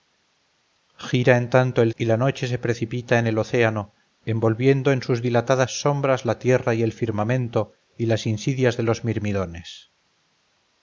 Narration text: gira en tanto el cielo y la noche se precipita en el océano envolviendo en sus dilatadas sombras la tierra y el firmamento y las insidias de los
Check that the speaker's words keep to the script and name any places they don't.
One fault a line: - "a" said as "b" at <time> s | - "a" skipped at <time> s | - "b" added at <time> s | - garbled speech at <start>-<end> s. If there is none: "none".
- "cielo" skipped at 1.9 s